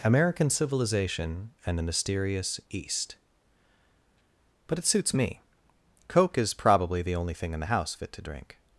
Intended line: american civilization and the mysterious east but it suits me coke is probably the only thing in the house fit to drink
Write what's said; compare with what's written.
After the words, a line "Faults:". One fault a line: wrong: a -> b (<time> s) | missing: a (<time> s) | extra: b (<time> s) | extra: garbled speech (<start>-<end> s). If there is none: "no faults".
american civilization and the mysterious east but it suits me coke is probably the only thing in the house fit to drink
Faults:
no faults